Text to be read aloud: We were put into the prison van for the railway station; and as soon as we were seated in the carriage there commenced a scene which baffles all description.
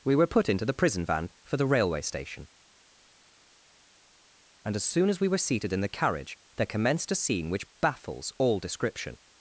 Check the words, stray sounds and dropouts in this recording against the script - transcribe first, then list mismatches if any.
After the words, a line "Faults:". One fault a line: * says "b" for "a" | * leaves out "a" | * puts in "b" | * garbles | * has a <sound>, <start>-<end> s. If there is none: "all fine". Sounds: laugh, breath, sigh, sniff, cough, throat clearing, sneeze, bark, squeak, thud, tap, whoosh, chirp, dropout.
We were put into the prison van for the railway station; and as soon as we were seated in the carriage there commenced a scene which baffles all description.
Faults:
all fine